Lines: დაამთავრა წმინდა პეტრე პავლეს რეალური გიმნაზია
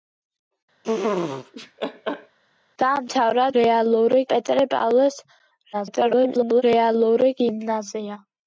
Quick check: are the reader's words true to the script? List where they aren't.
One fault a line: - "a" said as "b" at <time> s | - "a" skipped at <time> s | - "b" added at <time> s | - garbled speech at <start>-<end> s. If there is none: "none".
- "წმინდა" said as "რეალური" at 3.6 s
- garbled speech at 5.7-6.6 s